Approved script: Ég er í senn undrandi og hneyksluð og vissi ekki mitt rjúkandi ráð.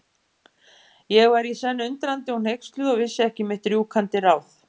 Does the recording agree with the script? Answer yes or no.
no